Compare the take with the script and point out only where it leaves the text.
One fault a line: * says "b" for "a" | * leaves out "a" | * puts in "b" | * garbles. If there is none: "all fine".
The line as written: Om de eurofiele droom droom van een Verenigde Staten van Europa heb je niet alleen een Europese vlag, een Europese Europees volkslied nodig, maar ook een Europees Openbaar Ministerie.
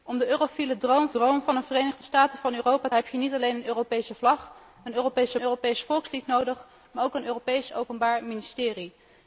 all fine